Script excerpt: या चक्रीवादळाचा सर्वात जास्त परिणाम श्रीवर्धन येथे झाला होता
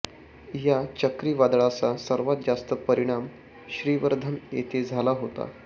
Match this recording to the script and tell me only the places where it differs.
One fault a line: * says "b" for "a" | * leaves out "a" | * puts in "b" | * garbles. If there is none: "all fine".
all fine